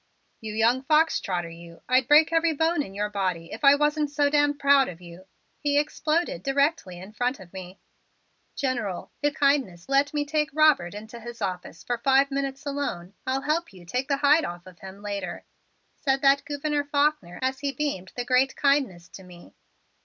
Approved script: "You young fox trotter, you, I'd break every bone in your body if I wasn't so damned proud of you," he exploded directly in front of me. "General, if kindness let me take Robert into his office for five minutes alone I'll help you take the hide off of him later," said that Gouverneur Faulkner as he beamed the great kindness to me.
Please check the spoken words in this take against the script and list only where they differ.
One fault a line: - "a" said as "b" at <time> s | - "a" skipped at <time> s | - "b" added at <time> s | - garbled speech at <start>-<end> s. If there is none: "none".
none